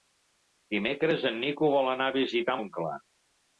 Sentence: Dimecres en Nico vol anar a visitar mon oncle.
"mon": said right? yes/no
no